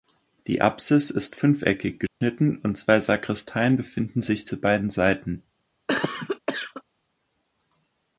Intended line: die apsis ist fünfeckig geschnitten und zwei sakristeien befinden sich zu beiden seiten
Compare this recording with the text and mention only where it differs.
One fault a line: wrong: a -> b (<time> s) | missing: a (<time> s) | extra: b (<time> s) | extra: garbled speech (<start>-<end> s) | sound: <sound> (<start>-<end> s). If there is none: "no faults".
sound: dropout (2.1-2.2 s)
sound: cough (5.9-6.8 s)